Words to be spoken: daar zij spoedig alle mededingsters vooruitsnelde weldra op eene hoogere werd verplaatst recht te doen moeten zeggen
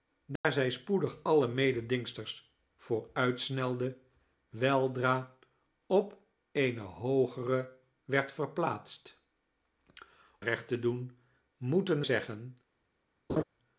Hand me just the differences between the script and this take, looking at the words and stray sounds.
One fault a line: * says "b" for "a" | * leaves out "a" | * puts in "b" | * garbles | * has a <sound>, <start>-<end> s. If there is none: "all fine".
* has a dropout, 0.4-0.4 s
* has a laugh, 13.3-13.4 s